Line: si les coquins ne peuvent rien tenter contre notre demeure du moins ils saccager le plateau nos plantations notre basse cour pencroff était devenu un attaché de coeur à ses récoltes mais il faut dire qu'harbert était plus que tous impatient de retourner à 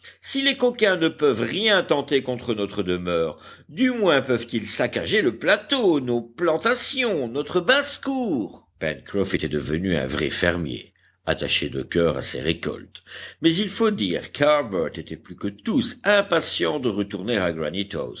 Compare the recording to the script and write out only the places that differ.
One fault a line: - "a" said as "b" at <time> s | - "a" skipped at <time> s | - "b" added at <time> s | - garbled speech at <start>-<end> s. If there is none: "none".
- "peuvent" added at 4.2 s
- "vrai fermier" added at 10.1 s